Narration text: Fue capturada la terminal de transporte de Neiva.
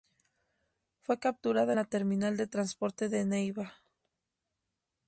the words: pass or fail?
pass